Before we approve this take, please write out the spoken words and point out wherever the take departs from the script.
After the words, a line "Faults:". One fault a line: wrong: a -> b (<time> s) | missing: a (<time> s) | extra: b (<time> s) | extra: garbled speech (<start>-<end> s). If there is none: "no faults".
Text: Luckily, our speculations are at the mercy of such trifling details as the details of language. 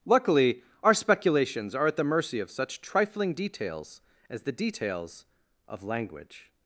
Luckily, our speculations are at the mercy of such trifling details as the details of language.
Faults:
no faults